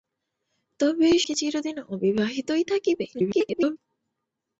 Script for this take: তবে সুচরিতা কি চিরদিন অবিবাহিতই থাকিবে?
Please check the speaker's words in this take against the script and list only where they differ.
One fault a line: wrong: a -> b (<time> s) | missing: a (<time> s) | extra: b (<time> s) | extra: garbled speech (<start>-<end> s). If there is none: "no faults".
missing: সুচরিতা (1.1 s)
extra: garbled speech (3.1-3.8 s)